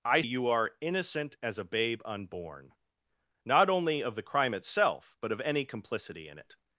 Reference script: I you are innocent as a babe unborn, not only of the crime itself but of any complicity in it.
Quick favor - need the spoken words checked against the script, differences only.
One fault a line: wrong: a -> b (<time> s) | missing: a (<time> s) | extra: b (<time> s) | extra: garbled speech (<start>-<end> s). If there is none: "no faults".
no faults